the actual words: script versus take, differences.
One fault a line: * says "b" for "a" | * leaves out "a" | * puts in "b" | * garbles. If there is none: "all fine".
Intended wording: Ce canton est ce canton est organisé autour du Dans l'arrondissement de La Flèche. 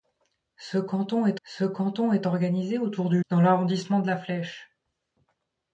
all fine